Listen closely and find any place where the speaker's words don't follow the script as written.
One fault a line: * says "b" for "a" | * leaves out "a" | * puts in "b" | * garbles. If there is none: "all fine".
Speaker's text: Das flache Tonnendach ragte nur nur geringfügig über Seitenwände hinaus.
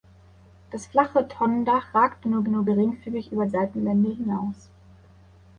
all fine